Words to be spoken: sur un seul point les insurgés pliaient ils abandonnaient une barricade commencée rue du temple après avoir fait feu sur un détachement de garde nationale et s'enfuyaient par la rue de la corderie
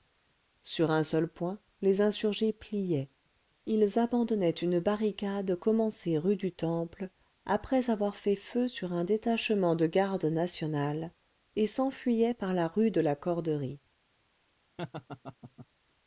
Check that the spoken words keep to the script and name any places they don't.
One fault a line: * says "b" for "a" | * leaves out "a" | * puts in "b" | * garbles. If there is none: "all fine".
all fine